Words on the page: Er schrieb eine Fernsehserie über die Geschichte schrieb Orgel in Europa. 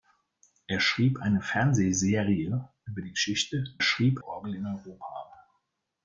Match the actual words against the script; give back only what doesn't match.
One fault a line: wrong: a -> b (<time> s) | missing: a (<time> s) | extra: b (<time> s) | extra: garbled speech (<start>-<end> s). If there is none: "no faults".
no faults